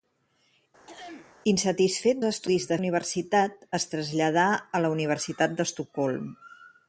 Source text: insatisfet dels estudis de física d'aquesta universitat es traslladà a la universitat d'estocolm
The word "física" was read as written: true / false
false